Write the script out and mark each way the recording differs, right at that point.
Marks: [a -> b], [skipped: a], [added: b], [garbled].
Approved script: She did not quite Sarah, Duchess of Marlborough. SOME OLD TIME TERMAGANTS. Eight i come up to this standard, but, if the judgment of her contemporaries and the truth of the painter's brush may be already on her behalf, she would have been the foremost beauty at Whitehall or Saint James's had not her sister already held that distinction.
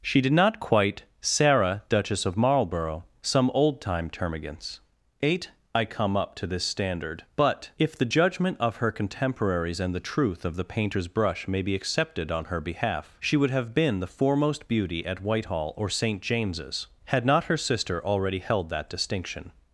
She did not quite Sarah, Duchess of Marlborough. SOME OLD TIME TERMAGANTS. Eight i come up to this standard, but, if the judgment of her contemporaries and the truth of the painter's brush may be [already -> accepted] on her behalf, she would have been the foremost beauty at Whitehall or Saint James's had not her sister already held that distinction.